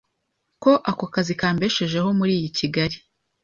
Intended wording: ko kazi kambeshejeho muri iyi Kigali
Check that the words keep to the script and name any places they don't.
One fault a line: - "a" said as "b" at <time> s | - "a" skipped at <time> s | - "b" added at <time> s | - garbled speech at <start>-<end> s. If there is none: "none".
- "ako" added at 0.9 s